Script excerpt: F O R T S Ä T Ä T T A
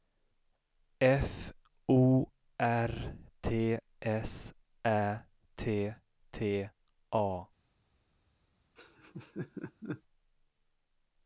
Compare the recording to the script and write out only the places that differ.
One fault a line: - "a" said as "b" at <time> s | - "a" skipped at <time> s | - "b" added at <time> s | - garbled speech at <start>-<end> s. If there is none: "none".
- "Ä T" skipped at 5.9 s